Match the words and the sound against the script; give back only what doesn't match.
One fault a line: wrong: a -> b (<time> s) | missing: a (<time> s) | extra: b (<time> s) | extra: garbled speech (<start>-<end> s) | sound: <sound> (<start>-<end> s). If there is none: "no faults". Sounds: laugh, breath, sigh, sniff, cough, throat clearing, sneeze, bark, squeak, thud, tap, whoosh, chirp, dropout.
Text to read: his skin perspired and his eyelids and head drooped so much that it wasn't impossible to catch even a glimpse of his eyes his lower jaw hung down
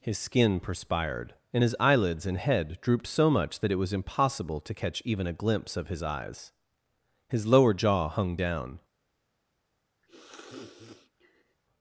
wrong: wasn't -> was (3.8 s)
sound: sniff (10.0-11.6 s)